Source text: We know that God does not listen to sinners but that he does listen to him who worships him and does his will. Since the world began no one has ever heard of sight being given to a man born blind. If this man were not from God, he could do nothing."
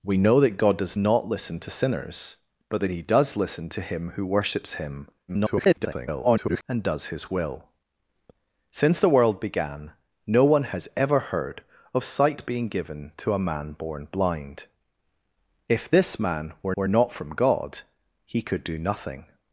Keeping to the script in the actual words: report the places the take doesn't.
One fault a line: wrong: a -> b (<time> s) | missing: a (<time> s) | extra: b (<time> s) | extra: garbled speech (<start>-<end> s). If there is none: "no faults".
extra: garbled speech (5.3-6.6 s)
extra: were (16.7 s)